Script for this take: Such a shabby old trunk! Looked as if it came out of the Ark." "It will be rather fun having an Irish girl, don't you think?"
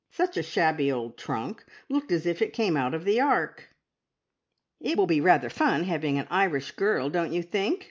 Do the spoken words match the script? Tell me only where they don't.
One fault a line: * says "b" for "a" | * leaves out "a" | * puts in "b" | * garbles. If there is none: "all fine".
all fine